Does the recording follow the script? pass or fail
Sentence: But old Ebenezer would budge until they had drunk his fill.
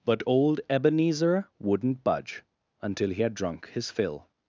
fail